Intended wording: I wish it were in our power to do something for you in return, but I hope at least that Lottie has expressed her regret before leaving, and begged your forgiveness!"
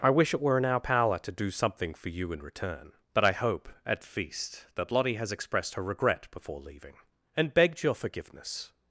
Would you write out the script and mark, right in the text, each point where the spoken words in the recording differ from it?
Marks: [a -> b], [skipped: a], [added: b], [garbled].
I wish it were in our power to do something for you in return, but I hope at [least -> feast] that Lottie has expressed her regret before leaving, and begged your forgiveness!"